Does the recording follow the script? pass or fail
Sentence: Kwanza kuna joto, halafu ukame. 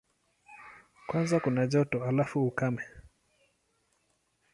pass